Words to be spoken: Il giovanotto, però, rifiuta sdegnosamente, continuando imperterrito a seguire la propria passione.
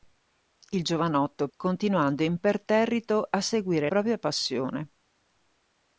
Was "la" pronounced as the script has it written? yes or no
no